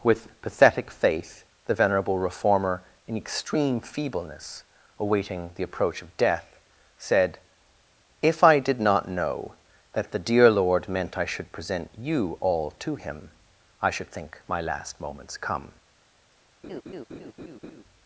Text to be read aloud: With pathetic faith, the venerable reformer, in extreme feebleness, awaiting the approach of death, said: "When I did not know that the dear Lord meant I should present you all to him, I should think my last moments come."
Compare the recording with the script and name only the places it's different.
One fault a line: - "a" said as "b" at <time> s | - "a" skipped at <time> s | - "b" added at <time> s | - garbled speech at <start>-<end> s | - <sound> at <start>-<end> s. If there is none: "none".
- "When" said as "If" at 8.2 s
- laugh at 16.6-17.8 s